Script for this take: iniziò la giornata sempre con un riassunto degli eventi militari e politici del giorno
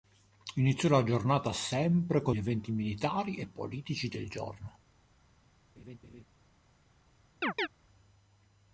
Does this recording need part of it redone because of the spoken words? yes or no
yes